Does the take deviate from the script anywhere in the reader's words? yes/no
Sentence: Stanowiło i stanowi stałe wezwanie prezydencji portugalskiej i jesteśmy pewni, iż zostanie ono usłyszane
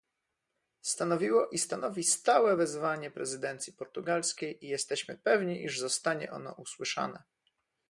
no